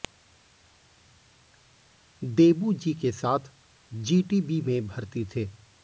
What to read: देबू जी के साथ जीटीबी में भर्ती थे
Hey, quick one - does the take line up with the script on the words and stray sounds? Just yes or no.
yes